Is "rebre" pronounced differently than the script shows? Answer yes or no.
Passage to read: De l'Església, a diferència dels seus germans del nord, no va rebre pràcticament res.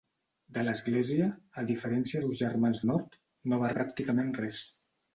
yes